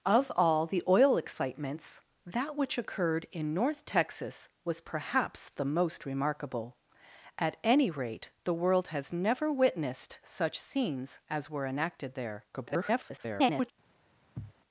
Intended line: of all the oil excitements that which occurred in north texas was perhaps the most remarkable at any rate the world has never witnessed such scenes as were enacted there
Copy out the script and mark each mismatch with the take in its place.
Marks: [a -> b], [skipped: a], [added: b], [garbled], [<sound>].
of all the oil excitements that which occurred in north texas was perhaps the most remarkable at any rate the world has never witnessed such scenes as were enacted there [garbled] [sniff]